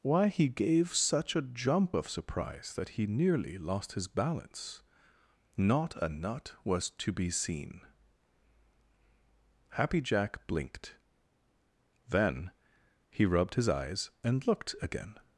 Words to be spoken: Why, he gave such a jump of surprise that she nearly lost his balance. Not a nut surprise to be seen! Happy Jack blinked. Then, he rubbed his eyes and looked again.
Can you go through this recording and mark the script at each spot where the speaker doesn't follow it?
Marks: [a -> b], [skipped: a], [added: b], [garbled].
Why, he gave such a jump of surprise that [she -> he] nearly lost his balance. Not a nut [surprise -> was] to be seen! Happy Jack blinked. Then, he rubbed his eyes and looked again.